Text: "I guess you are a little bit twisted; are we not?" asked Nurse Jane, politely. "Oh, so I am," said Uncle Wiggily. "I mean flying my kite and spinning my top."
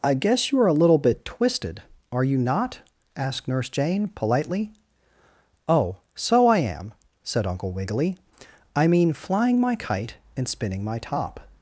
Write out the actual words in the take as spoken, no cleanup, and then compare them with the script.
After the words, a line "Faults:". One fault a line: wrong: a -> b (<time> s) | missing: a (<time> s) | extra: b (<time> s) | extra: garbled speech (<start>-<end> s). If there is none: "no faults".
"I guess you are a little bit twisted; are you not?" asked Nurse Jane, politely. "Oh, so I am," said Uncle Wiggily. "I mean flying my kite and spinning my top."
Faults:
wrong: we -> you (2.2 s)